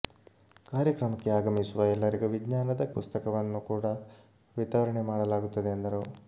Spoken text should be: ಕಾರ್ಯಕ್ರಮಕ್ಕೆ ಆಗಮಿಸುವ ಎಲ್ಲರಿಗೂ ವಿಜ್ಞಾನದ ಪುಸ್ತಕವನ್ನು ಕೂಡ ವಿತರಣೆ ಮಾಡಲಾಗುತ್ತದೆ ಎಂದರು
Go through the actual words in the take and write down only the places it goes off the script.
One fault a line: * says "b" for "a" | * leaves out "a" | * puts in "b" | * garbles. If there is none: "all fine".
all fine